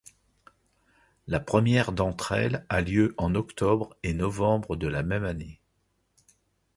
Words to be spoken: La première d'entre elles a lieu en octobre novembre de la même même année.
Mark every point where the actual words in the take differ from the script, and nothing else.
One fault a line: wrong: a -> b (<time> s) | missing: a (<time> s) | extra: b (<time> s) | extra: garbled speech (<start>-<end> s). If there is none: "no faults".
extra: et (4.0 s)
missing: même (5.2 s)